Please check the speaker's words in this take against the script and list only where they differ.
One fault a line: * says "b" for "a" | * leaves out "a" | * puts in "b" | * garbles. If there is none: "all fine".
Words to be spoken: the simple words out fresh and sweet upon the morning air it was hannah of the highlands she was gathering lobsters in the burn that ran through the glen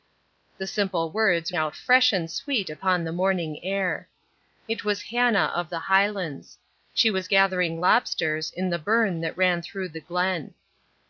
all fine